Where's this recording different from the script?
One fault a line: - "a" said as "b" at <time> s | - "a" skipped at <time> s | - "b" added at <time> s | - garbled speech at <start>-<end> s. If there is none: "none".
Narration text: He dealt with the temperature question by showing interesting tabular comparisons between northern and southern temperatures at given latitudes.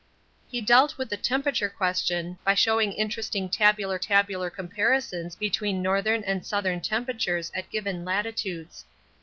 - "tabular" added at 4.0 s